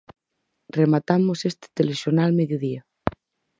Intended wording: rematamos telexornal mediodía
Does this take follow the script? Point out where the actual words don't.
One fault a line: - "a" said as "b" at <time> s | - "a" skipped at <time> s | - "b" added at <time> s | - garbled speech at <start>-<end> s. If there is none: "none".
- "este" added at 1.4 s